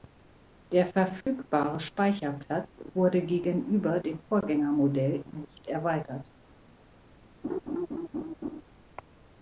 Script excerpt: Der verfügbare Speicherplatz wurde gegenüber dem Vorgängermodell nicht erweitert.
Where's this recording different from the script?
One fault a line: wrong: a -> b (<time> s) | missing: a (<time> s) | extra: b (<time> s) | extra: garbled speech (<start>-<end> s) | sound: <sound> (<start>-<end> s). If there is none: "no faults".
sound: dropout (1.2-1.3 s)
sound: laugh (7.4-8.6 s)